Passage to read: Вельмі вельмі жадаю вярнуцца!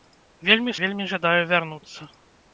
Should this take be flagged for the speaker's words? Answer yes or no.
no